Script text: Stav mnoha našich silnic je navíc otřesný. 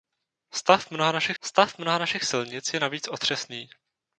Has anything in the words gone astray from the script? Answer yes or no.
yes